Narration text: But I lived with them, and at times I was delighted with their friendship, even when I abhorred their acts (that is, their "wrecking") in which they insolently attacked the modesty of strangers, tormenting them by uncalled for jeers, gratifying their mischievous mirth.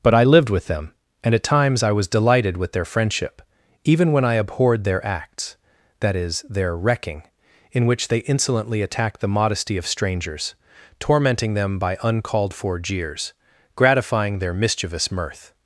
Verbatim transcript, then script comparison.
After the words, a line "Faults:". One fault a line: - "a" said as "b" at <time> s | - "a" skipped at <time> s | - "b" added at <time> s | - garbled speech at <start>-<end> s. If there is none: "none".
But I lived with them, and at times I was delighted with their friendship, even when I abhorred their acts (that is, their "wrecking") in which they insolently attacked the modesty of strangers, tormenting them by uncalled for jeers, gratifying their mischievous mirth.
Faults:
none